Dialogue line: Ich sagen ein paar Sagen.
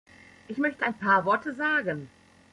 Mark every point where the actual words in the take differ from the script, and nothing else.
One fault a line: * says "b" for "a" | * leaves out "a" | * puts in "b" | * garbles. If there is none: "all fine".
* says "möchte" for "sagen"
* puts in "Worte"